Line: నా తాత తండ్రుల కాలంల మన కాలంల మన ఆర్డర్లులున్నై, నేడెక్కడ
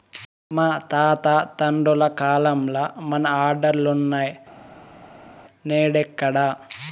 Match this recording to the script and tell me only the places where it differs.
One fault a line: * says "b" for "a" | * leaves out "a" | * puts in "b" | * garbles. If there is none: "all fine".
* says "మా" for "నా"
* leaves out "కాలంల మన"